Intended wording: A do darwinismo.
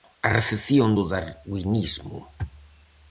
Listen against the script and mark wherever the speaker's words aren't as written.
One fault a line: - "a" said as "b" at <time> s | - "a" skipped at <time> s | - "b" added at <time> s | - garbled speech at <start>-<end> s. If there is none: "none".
- "recepción" added at 0.4 s